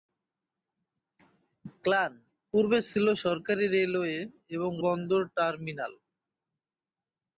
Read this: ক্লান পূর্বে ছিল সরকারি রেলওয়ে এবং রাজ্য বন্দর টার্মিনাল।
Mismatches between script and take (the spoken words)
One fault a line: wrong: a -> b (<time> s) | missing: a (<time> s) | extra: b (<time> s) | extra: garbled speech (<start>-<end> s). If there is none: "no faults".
missing: রাজ্য (4.7 s)